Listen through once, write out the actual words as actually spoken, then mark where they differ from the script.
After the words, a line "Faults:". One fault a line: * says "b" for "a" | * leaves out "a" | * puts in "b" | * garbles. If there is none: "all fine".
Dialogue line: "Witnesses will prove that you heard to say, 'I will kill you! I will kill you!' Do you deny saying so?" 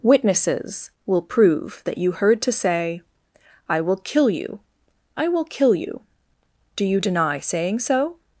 "Witnesses will prove that you heard to say, 'I will kill you! I will kill you!' Do you deny saying so?"
Faults:
all fine